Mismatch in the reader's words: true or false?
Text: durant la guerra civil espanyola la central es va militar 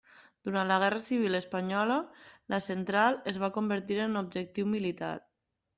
true